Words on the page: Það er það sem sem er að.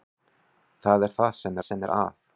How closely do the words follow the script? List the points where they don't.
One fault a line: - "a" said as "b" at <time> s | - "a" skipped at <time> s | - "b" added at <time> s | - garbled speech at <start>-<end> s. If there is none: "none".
none